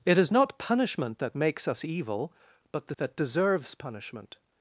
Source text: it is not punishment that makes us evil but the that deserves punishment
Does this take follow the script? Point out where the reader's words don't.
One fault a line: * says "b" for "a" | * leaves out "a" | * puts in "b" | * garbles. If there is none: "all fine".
all fine